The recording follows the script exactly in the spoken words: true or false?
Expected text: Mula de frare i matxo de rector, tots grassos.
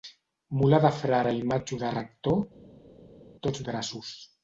true